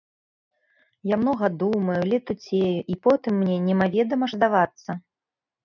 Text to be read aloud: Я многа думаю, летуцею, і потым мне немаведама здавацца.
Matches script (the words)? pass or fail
pass